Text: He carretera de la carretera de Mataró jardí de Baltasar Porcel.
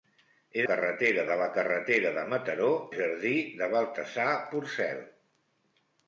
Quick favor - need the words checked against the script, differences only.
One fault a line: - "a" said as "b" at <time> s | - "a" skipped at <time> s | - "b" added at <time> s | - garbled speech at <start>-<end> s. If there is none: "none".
none